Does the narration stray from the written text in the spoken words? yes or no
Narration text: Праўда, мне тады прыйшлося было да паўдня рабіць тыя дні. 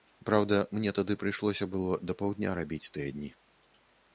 no